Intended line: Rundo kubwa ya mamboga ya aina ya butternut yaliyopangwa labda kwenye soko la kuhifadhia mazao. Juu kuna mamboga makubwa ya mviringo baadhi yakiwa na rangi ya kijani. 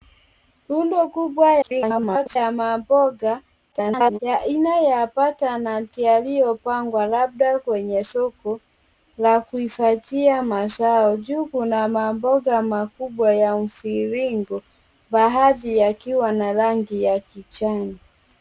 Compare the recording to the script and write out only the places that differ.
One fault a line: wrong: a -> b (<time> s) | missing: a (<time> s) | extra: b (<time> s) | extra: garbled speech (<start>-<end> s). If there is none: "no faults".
extra: garbled speech (1.6-2.4 s)
extra: garbled speech (3.7-4.2 s)